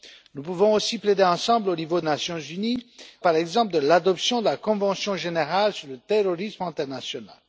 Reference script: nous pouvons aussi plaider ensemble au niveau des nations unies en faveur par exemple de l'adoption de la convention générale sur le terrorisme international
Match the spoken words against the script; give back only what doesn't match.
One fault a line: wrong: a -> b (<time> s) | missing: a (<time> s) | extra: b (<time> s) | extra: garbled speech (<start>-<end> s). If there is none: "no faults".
missing: des (2.0 s)
missing: en faveur (2.8 s)